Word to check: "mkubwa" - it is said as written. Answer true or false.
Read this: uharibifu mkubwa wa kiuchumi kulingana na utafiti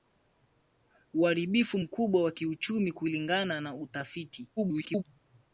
true